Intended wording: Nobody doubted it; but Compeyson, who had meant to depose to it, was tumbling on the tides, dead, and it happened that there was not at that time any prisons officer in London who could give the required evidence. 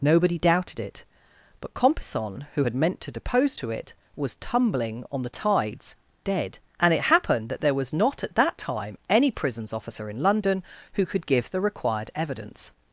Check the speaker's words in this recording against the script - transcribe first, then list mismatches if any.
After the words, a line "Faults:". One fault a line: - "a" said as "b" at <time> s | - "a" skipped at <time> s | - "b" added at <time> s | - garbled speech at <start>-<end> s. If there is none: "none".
Nobody doubted it; but Compeyson, who had meant to depose to it, was tumbling on the tides, dead, and it happened that there was not at that time any prisons officer in London who could give the required evidence.
Faults:
none